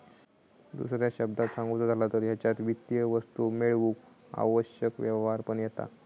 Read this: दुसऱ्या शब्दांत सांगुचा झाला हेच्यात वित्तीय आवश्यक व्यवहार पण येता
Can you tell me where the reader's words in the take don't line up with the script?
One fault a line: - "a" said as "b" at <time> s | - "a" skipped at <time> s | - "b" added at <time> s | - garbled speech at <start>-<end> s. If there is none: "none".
- "तर" added at 2.0 s
- "वस्तू मेळवूक" added at 3.0 s